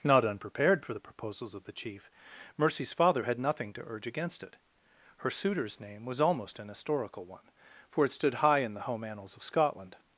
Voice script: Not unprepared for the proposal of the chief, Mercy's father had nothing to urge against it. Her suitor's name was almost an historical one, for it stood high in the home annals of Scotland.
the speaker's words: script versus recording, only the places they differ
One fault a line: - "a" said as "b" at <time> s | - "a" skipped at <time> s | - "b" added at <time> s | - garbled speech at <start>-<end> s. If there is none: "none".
- "proposal" said as "proposals" at 1.0 s